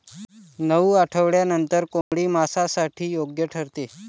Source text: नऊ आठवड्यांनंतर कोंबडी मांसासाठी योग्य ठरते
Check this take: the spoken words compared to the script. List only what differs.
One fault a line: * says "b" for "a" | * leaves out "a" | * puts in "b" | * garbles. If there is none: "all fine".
all fine